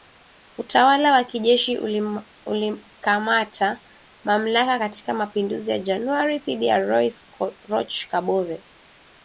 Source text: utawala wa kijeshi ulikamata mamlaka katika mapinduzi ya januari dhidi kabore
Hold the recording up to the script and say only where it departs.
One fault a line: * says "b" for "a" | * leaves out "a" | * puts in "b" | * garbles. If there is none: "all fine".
* puts in "ya rais roch"